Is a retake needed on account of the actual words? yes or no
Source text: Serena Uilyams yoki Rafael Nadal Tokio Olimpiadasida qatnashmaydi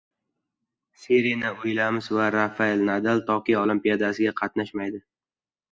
yes